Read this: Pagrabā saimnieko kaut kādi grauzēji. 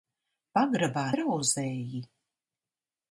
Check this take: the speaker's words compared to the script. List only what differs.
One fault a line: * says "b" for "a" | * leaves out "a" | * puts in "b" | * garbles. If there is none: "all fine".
* leaves out "saimnieko kaut kādi"